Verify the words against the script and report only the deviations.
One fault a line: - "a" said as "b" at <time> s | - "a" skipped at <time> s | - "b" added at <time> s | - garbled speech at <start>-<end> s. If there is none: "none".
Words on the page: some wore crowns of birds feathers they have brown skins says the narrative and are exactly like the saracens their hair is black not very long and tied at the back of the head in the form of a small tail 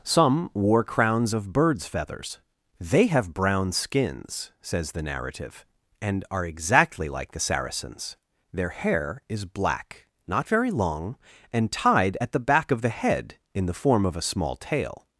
none